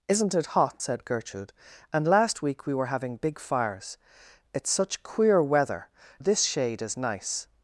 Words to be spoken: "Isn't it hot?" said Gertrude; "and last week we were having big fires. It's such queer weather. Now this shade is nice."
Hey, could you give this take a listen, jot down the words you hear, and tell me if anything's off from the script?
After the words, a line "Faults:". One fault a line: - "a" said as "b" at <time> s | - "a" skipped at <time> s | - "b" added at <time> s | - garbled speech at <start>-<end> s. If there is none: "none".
"Isn't it hot?" said Gertrude; "and last week we were having big fires. It's such queer weather. This shade is nice."
Faults:
- "Now" skipped at 5.9 s